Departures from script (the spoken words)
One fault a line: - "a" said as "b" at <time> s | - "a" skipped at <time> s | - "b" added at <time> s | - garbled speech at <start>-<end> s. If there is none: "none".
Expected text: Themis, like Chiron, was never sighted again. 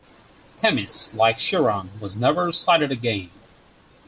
none